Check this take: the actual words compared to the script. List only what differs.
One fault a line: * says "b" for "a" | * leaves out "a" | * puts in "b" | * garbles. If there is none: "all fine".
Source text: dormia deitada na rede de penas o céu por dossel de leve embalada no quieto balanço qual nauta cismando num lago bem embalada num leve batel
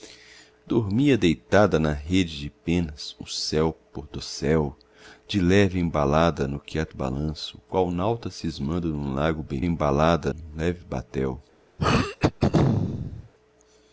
all fine